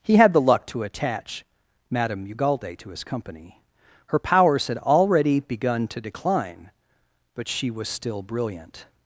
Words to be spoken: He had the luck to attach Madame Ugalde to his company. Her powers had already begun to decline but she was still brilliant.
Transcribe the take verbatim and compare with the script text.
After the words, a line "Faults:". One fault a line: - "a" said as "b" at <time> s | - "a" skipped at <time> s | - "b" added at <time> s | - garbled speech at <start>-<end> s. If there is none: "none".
He had the luck to attach Madame Ugalde to his company. Her powers had already begun to decline but she was still brilliant.
Faults:
none